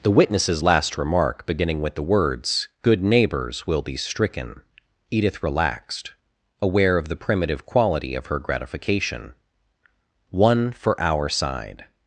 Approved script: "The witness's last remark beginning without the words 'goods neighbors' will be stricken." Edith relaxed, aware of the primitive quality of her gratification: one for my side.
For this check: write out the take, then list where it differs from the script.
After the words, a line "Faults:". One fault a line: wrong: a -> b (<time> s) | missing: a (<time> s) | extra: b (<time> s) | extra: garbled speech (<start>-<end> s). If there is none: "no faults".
"The witness's last remark beginning with the words 'good neighbors' will be stricken." Edith relaxed, aware of the primitive quality of her gratification: one for our side.
Faults:
wrong: without -> with (1.8 s)
wrong: goods -> good (2.8 s)
wrong: my -> our (11.0 s)